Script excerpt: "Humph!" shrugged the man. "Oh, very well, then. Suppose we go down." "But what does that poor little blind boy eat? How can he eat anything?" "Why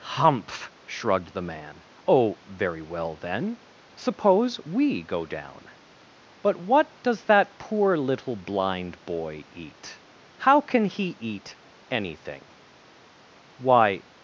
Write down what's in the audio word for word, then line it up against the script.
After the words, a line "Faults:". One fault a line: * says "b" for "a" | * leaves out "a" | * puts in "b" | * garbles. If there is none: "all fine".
"Humph!" shrugged the man. "Oh, very well, then. Suppose we go down." "But what does that poor little blind boy eat? How can he eat anything?" "Why
Faults:
all fine